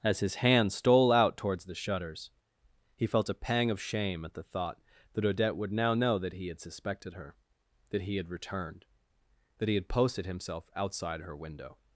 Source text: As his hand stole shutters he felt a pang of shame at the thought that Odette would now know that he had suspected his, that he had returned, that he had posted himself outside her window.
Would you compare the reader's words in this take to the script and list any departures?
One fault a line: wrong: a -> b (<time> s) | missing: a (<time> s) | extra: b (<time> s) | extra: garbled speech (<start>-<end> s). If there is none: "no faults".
extra: out towards the (1.1 s)
wrong: his -> her (7.2 s)